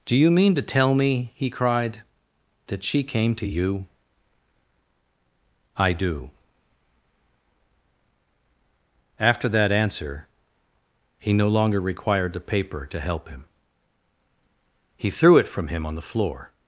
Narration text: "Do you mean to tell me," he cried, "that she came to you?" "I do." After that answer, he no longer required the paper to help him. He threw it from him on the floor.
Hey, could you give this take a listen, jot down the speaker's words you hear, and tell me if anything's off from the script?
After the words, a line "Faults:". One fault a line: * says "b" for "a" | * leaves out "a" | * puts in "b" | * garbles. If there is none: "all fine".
"Do you mean to tell me," he cried, "that she came to you?" "I do." After that answer, he no longer required the paper to help him. He threw it from him on the floor.
Faults:
all fine